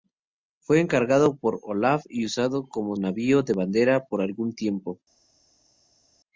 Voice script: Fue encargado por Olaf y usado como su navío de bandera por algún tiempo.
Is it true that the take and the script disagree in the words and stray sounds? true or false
true